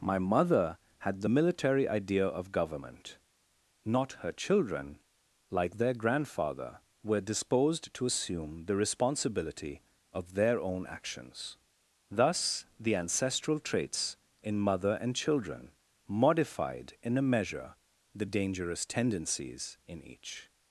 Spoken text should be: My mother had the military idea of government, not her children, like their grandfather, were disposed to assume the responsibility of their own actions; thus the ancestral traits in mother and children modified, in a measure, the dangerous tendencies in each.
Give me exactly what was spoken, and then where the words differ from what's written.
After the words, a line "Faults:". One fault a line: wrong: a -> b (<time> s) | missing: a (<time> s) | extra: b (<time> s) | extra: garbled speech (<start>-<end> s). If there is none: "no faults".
My mother had the military idea of government, not her children, like their grandfather, were disposed to assume the responsibility of their own actions; thus the ancestral traits in mother and children modified, in a measure, the dangerous tendencies in each.
Faults:
no faults